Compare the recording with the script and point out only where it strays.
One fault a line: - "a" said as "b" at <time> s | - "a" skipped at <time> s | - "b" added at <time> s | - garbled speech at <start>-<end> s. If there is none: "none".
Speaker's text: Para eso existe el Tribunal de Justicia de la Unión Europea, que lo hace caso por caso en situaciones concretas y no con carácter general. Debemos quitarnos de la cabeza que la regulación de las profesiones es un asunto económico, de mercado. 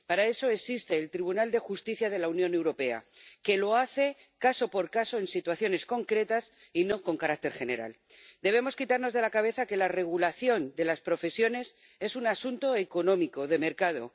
none